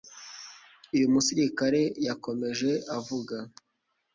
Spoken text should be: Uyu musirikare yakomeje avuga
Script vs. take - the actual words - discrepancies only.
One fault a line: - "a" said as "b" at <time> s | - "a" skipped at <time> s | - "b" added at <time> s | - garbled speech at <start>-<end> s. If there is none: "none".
none